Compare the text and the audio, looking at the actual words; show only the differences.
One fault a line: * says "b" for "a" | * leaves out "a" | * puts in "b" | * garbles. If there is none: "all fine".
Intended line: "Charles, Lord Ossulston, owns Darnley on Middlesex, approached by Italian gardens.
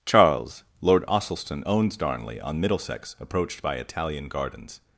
all fine